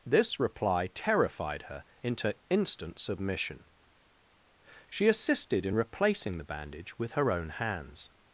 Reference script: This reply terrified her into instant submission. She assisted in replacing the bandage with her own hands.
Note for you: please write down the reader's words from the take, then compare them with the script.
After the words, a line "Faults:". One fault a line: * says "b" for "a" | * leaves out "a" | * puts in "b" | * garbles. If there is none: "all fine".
This reply terrified her into instant submission. She assisted in replacing the bandage with her own hands.
Faults:
all fine